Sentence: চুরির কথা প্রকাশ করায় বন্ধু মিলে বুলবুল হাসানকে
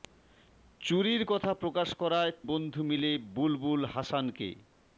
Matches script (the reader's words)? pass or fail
pass